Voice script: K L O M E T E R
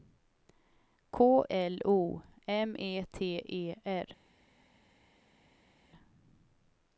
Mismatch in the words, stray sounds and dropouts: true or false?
false